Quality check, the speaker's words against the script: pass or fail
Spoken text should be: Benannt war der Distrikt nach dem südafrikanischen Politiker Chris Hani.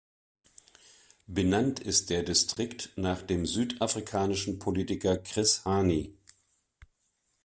fail